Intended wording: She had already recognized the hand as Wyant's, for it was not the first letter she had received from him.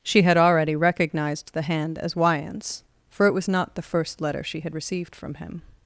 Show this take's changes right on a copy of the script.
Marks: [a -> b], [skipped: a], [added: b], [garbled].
She had already recognized the hand as Wyant's, for it was not the first letter she had received from him.